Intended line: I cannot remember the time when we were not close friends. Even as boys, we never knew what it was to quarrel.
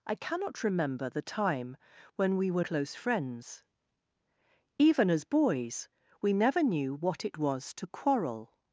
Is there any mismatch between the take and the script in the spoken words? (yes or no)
yes